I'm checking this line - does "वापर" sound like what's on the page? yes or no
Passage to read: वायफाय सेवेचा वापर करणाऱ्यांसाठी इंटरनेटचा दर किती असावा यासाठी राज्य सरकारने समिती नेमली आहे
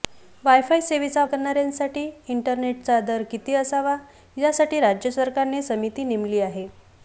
no